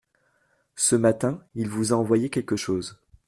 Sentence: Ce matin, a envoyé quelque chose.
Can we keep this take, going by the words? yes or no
no